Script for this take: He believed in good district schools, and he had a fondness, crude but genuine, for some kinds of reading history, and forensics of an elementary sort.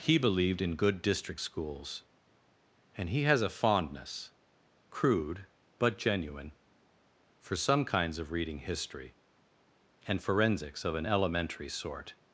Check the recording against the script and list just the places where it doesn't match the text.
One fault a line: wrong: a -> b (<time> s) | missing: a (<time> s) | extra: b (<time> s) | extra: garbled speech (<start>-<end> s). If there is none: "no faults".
wrong: had -> has (3.2 s)